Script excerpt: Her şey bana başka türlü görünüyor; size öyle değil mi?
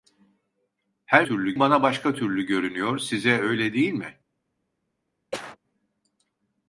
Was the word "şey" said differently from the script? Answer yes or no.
yes